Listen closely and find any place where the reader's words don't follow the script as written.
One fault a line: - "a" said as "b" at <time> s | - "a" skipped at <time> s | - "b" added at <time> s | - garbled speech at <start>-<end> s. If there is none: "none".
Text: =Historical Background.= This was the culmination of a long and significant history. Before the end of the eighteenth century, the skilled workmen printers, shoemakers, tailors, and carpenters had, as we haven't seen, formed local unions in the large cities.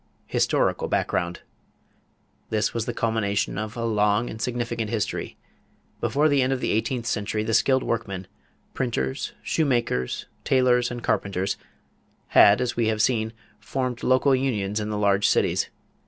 - "haven't" said as "have" at 12.9 s